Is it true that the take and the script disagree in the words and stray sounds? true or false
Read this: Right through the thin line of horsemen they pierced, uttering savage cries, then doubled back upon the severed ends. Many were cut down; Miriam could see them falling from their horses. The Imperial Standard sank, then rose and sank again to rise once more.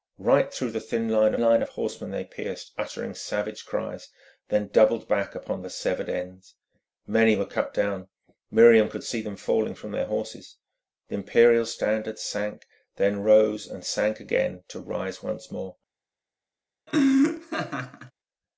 true